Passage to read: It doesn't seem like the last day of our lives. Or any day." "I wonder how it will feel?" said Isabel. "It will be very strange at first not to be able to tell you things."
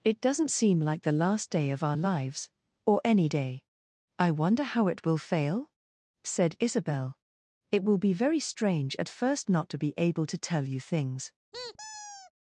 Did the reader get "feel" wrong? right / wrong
wrong